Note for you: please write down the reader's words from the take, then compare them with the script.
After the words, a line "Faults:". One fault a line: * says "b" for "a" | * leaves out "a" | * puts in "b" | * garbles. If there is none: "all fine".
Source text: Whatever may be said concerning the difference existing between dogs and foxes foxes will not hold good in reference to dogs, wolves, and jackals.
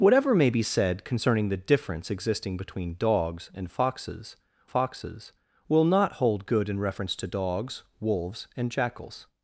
Whatever may be said concerning the difference existing between dogs and foxes foxes will not hold good in reference to dogs, wolves, and jackals.
Faults:
all fine